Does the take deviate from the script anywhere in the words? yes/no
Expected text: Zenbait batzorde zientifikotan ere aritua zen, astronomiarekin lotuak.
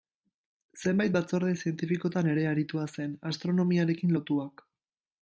no